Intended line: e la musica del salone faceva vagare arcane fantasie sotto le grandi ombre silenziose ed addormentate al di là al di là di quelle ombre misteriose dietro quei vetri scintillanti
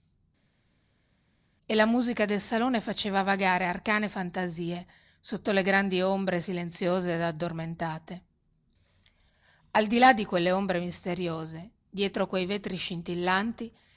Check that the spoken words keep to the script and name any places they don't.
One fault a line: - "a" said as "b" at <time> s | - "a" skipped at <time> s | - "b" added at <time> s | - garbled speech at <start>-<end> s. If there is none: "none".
- "al di là" skipped at 10.1 s